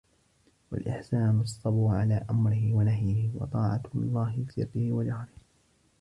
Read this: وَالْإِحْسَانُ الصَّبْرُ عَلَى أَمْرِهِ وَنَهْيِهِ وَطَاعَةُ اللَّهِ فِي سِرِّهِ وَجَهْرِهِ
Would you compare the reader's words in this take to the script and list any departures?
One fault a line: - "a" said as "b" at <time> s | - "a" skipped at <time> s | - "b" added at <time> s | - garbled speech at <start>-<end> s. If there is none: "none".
- "فِي" skipped at 4.5 s